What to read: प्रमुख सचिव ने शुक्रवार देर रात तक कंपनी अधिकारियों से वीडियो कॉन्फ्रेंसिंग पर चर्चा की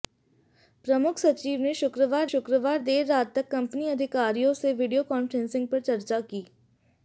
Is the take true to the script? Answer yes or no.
no